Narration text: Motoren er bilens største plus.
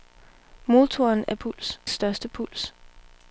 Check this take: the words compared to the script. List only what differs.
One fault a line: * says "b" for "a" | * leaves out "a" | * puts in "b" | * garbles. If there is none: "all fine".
* says "plus" for "bilens"